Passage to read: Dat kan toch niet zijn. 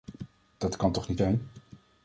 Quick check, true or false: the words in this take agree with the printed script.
true